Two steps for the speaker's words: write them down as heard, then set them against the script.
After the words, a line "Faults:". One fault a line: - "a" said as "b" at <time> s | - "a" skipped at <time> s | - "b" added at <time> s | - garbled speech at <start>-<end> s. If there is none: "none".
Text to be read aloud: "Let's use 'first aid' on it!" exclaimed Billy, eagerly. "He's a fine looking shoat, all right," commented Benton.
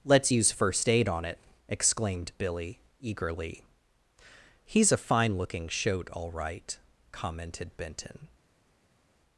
"Let's use 'first aid' on it!" exclaimed Billy, eagerly. "He's a fine looking shoat, all right," commented Benton.
Faults:
none